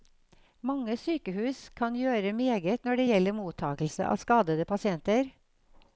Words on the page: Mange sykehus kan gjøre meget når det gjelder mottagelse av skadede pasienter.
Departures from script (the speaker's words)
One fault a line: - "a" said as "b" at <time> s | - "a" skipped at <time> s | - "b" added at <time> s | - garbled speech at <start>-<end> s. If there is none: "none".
none